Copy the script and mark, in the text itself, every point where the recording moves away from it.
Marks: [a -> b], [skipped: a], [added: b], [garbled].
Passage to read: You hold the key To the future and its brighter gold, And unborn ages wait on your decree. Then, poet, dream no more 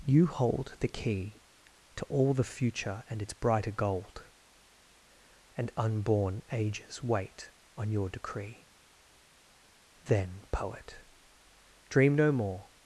You hold the key To [added: all] the future and its brighter gold, And unborn ages wait on your decree. Then, poet, dream no more